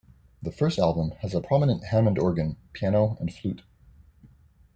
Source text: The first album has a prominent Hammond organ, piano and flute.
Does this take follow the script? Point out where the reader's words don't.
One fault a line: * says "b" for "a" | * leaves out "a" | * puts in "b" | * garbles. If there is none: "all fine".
all fine